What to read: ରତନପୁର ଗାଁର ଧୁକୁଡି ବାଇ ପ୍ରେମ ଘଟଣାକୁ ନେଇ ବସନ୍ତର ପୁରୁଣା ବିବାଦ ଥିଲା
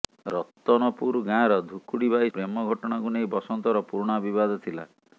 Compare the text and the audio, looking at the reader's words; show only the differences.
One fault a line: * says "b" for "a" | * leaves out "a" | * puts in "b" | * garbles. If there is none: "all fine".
all fine